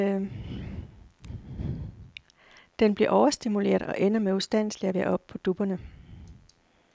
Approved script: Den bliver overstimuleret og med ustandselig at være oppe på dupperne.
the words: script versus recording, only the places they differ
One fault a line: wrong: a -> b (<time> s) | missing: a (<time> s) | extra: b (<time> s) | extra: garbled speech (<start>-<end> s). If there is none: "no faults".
extra: ender (4.0 s)